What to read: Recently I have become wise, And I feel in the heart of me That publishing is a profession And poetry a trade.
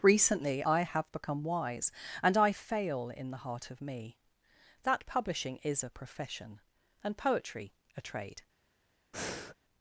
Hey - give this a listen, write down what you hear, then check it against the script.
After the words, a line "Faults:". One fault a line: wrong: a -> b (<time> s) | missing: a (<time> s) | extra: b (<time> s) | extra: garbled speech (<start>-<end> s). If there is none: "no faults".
Recently I have become wise, And I fail in the heart of me That publishing is a profession And poetry a trade.
Faults:
wrong: feel -> fail (2.5 s)